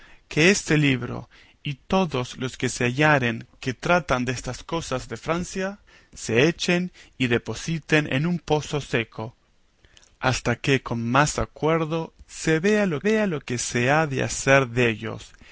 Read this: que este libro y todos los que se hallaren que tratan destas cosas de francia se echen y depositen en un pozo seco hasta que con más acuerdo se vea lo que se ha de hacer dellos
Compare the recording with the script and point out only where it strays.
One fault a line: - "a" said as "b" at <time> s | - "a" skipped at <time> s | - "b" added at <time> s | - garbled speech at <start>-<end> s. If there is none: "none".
- "vea lo" added at 13.0 s